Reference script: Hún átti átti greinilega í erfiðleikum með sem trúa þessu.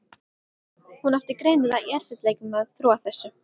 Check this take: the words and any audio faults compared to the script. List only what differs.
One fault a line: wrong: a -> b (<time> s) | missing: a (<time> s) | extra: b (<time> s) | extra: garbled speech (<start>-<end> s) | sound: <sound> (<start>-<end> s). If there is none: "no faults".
missing: átti (1.4 s)
wrong: sem -> að (2.7 s)